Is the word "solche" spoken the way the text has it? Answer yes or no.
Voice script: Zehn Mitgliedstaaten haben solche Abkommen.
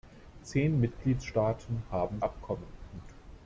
no